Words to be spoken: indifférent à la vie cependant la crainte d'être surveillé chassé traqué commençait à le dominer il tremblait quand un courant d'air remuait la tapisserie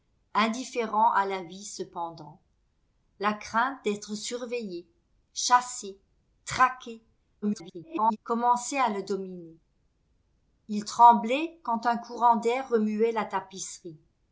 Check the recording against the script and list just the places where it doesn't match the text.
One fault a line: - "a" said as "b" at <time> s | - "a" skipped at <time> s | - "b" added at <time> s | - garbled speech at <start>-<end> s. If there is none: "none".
- garbled speech at 7.4-8.2 s